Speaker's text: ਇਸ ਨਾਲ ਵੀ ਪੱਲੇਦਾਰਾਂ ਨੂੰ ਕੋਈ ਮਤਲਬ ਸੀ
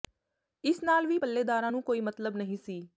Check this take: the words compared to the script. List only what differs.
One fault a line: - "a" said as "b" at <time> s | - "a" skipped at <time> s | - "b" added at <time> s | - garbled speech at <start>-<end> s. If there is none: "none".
- "ਨਹੀਂ" added at 2.4 s